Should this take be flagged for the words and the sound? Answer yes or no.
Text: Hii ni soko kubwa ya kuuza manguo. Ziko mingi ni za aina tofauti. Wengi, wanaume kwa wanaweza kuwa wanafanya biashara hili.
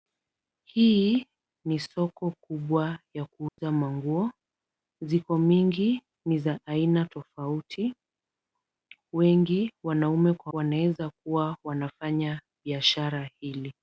yes